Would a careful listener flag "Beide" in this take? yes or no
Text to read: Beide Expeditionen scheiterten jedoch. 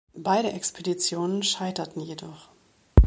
no